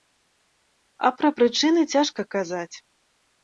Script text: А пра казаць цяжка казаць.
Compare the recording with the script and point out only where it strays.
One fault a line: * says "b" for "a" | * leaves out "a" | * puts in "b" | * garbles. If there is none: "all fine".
* says "прычыны" for "казаць"